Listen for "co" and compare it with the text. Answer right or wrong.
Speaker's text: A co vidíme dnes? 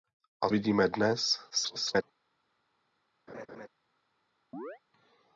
wrong